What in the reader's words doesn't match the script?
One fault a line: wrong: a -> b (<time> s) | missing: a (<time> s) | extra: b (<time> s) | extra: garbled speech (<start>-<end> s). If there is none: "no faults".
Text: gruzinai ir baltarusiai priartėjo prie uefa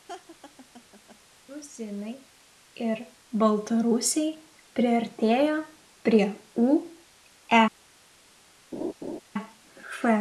no faults